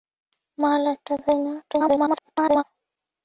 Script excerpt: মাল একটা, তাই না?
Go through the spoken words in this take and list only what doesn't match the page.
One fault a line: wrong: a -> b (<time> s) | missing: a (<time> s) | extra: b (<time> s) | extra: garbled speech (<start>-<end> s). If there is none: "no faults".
extra: garbled speech (1.6-2.6 s)